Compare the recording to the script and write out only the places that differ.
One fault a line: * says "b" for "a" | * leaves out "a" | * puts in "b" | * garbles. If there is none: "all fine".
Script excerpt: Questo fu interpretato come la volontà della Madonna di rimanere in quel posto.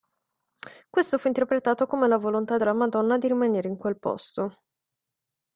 all fine